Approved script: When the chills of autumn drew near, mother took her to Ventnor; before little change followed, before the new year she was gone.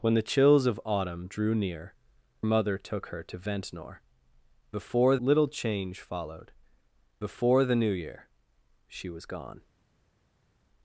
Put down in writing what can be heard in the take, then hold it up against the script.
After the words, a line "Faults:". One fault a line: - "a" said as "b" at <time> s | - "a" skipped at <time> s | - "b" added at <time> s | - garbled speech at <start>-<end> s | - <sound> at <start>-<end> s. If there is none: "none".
When the chills of autumn drew near, mother took her to Ventnor; before little change followed, before the new year she was gone.
Faults:
none